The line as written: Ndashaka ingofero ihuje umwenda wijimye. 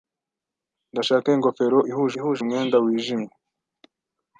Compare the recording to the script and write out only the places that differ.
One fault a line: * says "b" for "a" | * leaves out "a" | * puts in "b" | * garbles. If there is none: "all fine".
* puts in "ihuje"